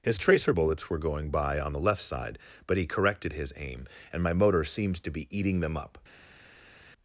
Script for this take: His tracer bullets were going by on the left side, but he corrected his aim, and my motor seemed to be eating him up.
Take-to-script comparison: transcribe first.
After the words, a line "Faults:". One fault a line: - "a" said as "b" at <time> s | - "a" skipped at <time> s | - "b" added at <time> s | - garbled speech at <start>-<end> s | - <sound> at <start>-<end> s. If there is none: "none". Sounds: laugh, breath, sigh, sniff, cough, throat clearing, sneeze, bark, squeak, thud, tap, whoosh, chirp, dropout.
His tracer bullets were going by on the left side, but he corrected his aim, and my motor seemed to be eating them up.
Faults:
- "him" said as "them" at 5.6 s